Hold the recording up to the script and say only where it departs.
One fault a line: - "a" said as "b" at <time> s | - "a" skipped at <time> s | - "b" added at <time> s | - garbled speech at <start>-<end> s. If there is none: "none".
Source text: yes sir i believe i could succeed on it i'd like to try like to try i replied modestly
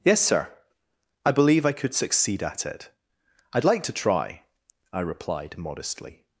- "on" said as "at" at 2.4 s
- "like to try" skipped at 4.4 s